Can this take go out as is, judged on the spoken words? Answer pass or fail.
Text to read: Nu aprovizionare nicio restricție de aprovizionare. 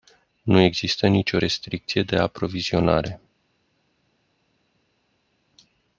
fail